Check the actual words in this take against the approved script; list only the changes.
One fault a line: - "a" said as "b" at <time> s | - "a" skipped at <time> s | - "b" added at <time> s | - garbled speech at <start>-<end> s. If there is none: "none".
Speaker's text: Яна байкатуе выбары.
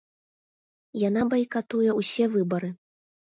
- "ўсе" added at 2.0 s